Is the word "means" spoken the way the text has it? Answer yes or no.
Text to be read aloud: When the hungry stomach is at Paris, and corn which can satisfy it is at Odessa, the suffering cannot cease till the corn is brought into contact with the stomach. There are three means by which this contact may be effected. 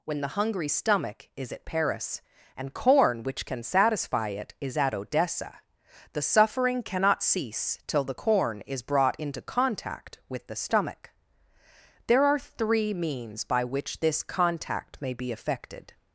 yes